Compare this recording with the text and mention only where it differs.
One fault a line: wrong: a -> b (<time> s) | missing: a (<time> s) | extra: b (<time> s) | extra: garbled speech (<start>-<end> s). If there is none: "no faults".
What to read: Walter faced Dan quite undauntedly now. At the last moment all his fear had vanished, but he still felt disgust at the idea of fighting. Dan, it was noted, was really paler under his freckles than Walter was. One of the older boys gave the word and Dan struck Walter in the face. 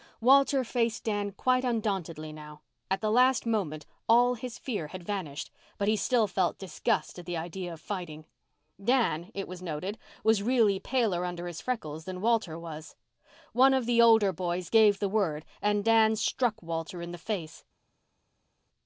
no faults